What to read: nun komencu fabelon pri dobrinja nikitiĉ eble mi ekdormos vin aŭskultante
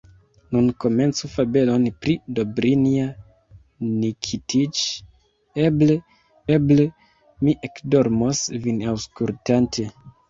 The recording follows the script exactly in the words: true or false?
false